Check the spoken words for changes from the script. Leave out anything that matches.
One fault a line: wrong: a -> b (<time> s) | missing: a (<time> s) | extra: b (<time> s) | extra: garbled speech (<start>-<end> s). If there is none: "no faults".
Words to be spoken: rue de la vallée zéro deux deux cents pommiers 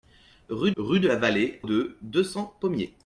extra: rue (0.8 s)
missing: zéro (1.6 s)